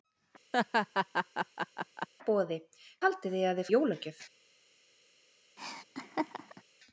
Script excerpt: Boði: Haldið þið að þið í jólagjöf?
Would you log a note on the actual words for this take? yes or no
no